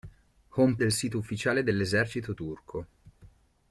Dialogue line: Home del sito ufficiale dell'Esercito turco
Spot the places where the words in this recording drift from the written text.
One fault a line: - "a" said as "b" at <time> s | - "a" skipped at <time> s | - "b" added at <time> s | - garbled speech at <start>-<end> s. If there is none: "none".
none